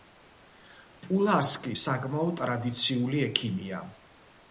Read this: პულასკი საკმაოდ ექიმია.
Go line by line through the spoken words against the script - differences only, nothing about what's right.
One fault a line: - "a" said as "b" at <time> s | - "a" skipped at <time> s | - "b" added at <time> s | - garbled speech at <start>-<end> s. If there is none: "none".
- "ტრადიციული" added at 2.4 s